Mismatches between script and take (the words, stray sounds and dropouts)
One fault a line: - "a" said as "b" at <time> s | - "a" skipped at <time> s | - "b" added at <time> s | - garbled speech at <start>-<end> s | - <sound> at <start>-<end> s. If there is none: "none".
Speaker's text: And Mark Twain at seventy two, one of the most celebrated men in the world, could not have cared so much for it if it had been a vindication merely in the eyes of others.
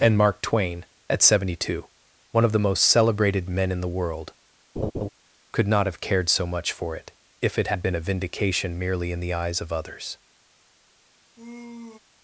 - laugh at 4.8-5.1 s
- sigh at 11.4-12.0 s